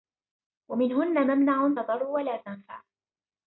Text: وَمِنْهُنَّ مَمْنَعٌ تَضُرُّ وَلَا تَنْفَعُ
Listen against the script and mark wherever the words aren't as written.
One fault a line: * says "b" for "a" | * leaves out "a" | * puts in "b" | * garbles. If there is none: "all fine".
all fine